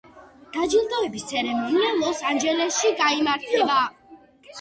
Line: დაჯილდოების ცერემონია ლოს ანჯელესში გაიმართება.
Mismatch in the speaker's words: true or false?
false